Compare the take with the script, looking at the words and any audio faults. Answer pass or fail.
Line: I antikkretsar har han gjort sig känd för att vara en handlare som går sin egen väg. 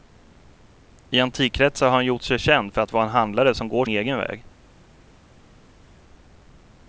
fail